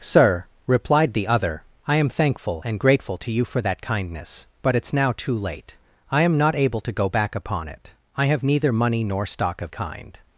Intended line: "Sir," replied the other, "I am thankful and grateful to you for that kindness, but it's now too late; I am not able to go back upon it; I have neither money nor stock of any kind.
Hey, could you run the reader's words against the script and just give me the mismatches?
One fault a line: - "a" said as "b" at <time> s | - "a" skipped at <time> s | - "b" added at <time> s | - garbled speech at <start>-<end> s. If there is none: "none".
- "any" skipped at 9.7 s